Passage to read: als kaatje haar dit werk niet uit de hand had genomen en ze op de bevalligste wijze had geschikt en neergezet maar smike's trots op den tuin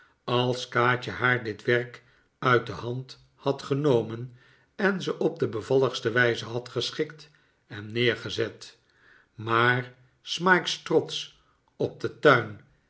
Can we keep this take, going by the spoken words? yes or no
no